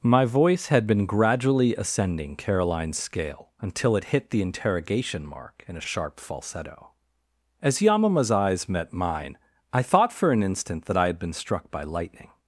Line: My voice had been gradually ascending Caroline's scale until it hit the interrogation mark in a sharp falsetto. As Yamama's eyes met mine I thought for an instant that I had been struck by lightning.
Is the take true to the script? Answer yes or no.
no